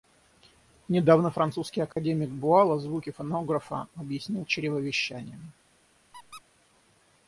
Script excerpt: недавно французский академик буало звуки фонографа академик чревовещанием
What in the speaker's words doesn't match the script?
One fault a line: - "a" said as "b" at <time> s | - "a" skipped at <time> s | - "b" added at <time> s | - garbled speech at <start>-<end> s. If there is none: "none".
- "академик" said as "объяснил" at 4.0 s